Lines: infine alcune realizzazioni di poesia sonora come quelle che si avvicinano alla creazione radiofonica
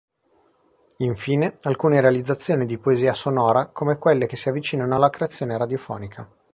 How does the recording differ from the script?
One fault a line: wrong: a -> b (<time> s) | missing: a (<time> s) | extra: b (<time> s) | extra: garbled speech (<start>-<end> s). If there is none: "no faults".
no faults